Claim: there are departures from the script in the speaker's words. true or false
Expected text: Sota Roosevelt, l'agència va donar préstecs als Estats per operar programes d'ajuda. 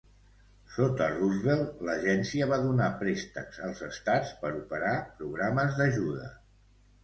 false